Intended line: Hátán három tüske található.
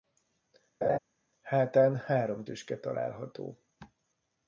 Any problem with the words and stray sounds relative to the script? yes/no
yes